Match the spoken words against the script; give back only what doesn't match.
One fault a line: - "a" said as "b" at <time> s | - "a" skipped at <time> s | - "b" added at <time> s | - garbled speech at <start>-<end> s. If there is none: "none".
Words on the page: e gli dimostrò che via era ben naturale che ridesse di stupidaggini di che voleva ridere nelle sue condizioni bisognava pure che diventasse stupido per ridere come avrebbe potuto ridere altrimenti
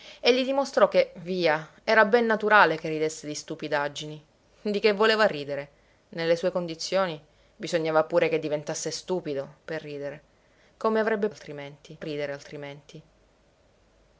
- "potuto" said as "altrimenti" at 11.3 s